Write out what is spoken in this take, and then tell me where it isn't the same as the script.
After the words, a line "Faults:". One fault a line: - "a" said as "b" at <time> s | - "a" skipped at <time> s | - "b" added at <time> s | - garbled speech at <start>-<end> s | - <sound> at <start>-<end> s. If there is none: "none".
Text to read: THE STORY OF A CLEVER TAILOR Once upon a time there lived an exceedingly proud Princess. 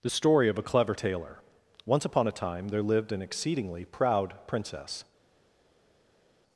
THE STORY OF A CLEVER TAILOR Once upon a time there lived an exceedingly proud Princess.
Faults:
none